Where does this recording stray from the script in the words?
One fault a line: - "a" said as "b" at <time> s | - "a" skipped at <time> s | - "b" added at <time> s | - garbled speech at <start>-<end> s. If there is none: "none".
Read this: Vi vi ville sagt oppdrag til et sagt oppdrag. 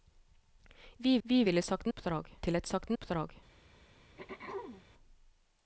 none